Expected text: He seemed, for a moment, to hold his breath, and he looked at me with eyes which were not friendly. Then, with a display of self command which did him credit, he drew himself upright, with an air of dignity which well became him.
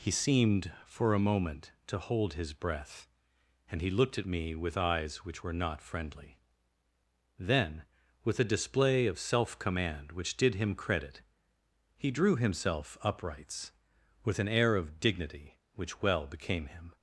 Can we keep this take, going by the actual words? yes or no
no